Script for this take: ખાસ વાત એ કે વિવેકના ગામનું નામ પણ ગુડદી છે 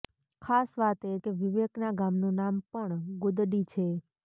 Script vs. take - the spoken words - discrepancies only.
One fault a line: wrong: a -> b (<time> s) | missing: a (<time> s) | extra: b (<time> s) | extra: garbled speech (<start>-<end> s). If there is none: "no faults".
no faults